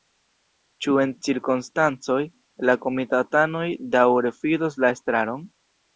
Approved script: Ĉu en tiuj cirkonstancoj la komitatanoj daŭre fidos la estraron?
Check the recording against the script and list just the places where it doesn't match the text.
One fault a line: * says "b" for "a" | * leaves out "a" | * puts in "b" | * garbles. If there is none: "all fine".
* leaves out "tiuj"